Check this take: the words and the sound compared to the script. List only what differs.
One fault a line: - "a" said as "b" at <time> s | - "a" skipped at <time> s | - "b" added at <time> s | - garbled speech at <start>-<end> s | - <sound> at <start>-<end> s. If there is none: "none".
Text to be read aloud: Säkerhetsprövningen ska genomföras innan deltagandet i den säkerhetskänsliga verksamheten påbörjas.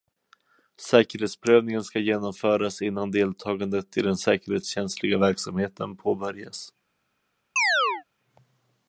- chirp at 7.6-8.0 s